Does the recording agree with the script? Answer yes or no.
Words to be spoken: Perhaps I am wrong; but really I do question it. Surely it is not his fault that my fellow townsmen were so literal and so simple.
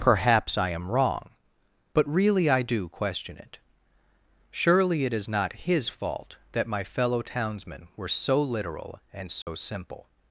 yes